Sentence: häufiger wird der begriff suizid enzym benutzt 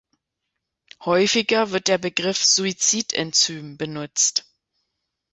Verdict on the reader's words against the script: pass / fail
pass